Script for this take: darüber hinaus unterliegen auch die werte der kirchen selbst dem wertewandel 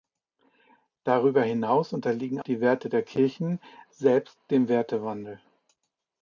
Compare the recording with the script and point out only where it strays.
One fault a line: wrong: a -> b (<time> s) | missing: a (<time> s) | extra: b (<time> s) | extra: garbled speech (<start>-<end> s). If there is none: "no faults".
missing: auch (2.4 s)